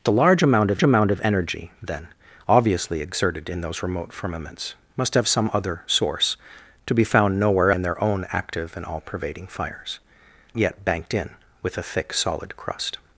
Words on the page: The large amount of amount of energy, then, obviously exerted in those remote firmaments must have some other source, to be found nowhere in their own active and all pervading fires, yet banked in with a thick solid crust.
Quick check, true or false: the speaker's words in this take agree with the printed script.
true